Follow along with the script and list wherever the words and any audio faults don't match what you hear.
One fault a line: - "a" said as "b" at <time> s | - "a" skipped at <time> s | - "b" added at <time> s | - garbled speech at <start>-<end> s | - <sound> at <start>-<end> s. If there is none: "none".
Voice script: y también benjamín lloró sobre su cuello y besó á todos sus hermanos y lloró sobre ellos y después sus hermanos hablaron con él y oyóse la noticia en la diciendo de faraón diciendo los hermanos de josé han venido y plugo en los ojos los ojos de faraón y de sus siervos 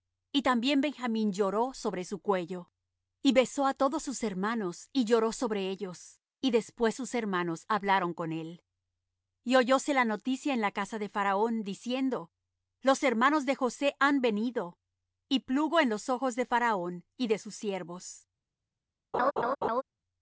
- "diciendo" said as "casa" at 10.7 s
- "los ojos" skipped at 16.4 s
- laugh at 19.1-19.8 s